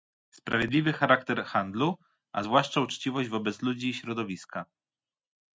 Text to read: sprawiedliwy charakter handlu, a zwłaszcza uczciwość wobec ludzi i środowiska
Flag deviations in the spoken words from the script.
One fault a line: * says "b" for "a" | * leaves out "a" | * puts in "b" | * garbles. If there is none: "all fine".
all fine